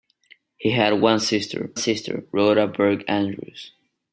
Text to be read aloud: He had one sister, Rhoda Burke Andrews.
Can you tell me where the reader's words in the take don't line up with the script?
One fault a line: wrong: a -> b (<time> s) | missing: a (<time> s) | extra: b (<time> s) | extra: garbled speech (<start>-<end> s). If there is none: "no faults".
extra: sister (1.7 s)